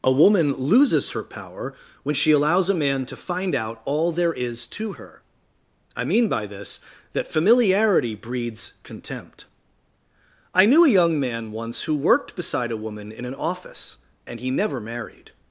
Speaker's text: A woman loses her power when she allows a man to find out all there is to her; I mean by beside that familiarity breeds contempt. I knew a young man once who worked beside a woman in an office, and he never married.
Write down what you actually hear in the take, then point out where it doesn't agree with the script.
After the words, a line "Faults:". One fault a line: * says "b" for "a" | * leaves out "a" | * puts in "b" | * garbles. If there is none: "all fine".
A woman loses her power when she allows a man to find out all there is to her; I mean by this that familiarity breeds contempt. I knew a young man once who worked beside a woman in an office, and he never married.
Faults:
* says "this" for "beside"